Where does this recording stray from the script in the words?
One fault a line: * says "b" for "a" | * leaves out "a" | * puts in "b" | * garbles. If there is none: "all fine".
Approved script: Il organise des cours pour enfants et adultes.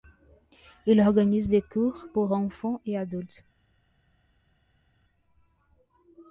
all fine